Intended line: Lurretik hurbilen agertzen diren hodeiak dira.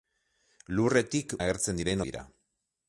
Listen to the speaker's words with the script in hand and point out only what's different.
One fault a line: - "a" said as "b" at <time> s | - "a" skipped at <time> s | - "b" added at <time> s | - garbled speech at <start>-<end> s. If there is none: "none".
- "hurbilen" skipped at 1.4 s
- "hodeiak" skipped at 2.0 s